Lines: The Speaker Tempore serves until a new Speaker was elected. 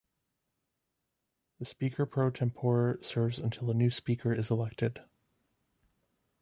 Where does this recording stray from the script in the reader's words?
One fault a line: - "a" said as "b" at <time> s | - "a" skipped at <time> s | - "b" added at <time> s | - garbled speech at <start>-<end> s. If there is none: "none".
- "Pro" added at 2.0 s
- "was" said as "is" at 4.3 s